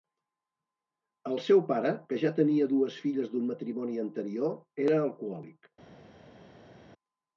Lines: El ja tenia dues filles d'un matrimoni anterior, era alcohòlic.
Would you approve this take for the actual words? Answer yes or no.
no